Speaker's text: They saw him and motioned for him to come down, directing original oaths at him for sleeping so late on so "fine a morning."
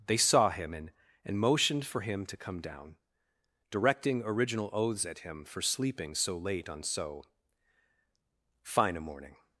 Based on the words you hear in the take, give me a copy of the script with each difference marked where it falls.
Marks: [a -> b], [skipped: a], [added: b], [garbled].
They saw him and [added: and] motioned for him to come down, directing original oaths at him for sleeping so late on so "fine a morning."